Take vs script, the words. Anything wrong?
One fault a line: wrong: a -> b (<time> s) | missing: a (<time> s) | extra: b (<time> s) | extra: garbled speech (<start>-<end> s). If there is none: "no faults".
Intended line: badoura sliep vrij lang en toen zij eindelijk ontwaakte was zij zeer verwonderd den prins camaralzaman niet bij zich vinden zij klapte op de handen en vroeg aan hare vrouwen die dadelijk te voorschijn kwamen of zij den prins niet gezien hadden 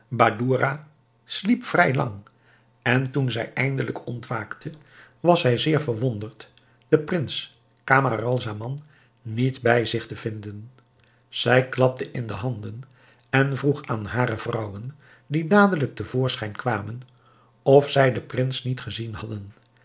extra: te (10.0 s)
wrong: op -> in (12.1 s)